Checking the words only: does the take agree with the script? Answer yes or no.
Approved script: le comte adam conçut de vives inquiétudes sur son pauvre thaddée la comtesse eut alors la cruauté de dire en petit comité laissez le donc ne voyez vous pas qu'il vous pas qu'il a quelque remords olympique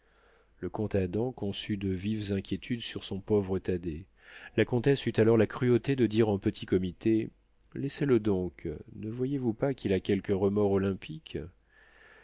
no